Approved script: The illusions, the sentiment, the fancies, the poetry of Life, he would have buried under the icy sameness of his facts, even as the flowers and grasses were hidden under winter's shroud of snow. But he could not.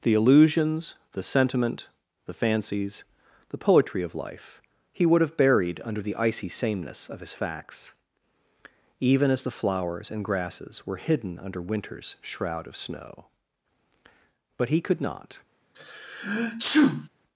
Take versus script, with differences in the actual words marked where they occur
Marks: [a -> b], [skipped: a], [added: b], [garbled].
The illusions, the sentiment, the fancies, the poetry of Life, he would have buried under the icy sameness of his facts, even as the flowers and grasses were hidden under winter's shroud of snow. But he could not.